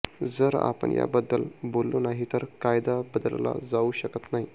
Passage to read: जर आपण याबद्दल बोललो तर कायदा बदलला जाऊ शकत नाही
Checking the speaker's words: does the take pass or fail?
fail